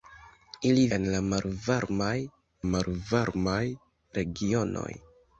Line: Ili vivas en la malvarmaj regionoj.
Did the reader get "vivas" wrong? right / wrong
wrong